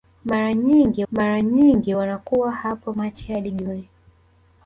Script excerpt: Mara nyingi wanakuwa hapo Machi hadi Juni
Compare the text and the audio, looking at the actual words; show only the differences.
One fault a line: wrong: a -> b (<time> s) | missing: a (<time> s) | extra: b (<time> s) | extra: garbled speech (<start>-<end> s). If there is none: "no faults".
extra: mara nyingi (1.1 s)